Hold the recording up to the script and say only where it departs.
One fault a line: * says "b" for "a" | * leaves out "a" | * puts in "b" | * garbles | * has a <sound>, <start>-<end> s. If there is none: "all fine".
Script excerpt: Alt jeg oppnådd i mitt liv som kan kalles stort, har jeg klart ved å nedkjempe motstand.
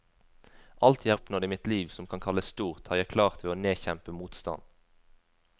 all fine